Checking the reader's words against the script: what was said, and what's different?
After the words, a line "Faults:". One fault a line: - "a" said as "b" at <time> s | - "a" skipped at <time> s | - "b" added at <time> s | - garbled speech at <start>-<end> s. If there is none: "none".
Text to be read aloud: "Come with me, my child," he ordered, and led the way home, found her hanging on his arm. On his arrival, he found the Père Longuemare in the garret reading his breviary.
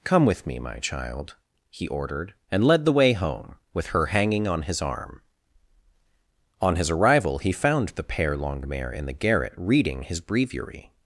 "Come with me, my child," he ordered, and led the way home, with her hanging on his arm. On his arrival, he found the Père Longuemare in the garret reading his breviary.
Faults:
- "found" said as "with" at 3.7 s